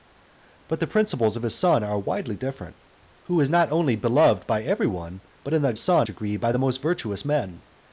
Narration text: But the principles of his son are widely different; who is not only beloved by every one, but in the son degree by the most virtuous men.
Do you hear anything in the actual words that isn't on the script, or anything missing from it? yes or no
no